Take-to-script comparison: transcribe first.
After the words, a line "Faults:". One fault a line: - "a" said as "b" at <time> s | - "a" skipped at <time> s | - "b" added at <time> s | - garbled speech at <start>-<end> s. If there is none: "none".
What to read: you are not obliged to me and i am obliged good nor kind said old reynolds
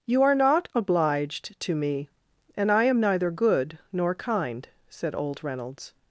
you are not obliged to me and i am neither good nor kind said old reynolds
Faults:
- "obliged" said as "neither" at 3.0 s